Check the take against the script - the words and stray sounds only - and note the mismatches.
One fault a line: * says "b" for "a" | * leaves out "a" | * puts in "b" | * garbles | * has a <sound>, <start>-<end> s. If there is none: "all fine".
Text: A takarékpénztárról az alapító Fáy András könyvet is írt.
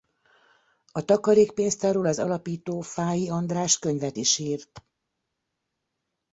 all fine